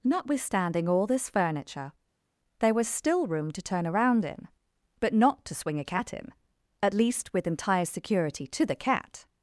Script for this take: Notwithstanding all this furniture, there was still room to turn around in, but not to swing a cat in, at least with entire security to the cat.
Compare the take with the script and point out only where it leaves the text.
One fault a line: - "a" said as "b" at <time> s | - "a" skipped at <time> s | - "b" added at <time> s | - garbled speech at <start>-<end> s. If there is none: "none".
none